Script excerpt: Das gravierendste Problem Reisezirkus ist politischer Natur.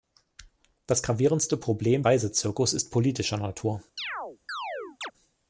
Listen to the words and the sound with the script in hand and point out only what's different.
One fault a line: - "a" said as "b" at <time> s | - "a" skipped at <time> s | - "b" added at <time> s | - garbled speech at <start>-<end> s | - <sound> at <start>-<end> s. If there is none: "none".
- chirp at 4.0-5.1 s